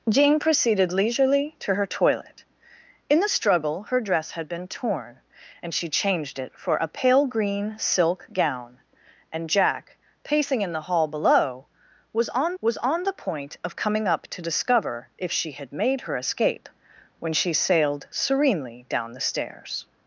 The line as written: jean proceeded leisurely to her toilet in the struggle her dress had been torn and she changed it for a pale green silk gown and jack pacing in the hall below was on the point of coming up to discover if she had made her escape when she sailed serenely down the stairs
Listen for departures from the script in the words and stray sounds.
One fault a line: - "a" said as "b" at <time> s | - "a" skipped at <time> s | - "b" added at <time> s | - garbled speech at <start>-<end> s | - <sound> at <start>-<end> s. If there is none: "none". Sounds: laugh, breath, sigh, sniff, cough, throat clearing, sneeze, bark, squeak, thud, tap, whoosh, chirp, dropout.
- "was on" added at 12.6 s